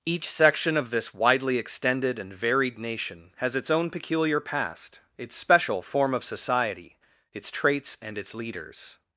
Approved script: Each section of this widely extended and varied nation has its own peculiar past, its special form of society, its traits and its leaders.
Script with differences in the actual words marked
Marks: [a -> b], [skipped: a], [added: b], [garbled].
Each section of this widely extended and varied nation has its own peculiar past, its special form of society, its traits and its leaders.